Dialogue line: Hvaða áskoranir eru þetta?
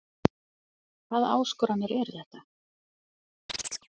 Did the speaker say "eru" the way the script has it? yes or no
yes